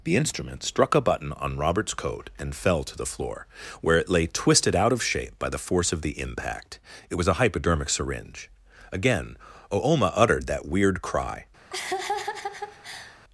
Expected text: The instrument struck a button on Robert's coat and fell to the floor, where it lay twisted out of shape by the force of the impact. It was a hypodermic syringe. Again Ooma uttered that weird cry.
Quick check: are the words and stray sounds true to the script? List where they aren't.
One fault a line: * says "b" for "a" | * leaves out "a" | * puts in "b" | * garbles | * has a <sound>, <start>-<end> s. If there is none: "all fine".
* has a laugh, 11.7-13.2 s